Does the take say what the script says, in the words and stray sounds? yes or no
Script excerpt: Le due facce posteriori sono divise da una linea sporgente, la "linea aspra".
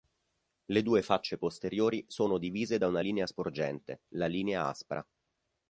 yes